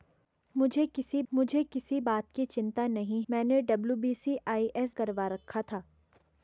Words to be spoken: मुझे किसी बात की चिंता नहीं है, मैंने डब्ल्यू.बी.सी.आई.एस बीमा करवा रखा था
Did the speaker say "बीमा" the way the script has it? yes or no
no